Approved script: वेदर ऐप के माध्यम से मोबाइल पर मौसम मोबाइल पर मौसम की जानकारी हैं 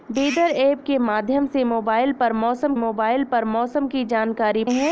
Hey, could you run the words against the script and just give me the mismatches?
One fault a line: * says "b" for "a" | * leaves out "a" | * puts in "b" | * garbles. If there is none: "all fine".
all fine